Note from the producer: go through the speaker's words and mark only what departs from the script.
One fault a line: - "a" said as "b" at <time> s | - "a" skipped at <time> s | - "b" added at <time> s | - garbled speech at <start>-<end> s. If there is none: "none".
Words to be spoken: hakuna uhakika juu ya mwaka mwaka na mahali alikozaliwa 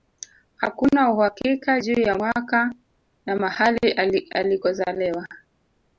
- "mwaka" skipped at 2.7 s